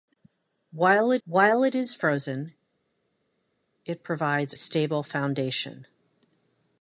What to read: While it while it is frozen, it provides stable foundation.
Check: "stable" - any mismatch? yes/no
no